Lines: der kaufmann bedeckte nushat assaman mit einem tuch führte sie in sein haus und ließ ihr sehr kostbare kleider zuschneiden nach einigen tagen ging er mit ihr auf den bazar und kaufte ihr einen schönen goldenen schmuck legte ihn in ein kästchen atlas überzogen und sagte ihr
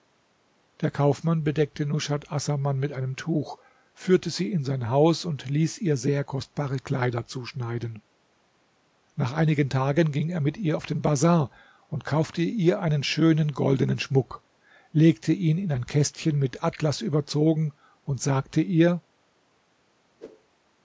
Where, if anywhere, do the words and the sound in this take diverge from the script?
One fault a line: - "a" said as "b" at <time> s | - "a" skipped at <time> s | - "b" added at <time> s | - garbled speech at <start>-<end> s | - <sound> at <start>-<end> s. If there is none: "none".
- "mit" added at 16.4 s
- whoosh at 20.2-20.5 s